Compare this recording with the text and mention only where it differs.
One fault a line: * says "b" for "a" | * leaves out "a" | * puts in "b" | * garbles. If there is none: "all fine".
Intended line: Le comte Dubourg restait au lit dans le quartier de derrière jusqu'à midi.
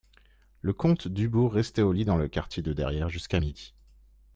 all fine